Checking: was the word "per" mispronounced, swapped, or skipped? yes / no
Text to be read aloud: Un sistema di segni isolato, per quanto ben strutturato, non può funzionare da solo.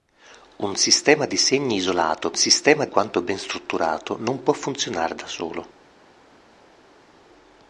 yes